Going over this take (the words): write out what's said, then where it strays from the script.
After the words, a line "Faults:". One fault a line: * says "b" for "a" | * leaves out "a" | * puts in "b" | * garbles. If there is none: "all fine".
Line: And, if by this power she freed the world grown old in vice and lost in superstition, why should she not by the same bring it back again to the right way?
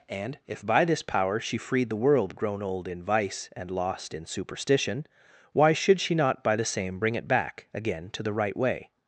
And, if by this power she freed the world grown old in vice and lost in superstition, why should she not by the same bring it back again to the right way?
Faults:
all fine